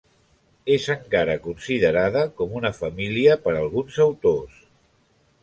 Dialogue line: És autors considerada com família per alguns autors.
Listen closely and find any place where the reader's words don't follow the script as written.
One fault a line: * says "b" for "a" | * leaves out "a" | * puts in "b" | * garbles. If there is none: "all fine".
* says "encara" for "autors"
* puts in "una"